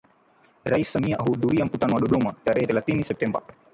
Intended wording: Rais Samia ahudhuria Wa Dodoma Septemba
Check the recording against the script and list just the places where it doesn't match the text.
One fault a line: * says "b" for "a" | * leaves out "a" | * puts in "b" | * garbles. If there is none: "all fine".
* puts in "Mkutano"
* puts in "tarehe thelathini"